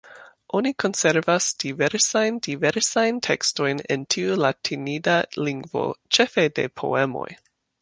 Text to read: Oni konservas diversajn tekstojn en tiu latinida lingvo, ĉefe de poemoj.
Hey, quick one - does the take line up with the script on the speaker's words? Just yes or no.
no